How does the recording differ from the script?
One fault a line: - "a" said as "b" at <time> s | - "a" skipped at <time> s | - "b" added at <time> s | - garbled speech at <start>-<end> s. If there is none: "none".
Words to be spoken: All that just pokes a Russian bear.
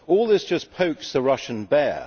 - "that" said as "this" at 0.3 s
- "a" said as "the" at 1.1 s